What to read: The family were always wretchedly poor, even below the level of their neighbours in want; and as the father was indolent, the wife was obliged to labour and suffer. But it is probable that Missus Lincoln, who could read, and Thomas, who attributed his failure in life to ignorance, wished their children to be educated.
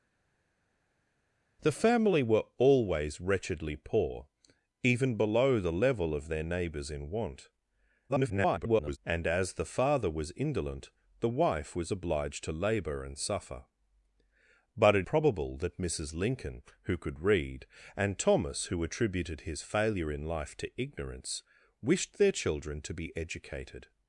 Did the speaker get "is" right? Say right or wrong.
wrong